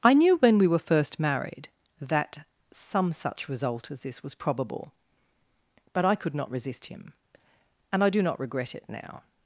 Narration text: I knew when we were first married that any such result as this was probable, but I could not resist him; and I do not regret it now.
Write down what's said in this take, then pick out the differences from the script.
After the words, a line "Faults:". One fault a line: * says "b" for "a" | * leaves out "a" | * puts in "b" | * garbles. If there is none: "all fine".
I knew when we were first married that some such result as this was probable, but I could not resist him; and I do not regret it now.
Faults:
* says "some" for "any"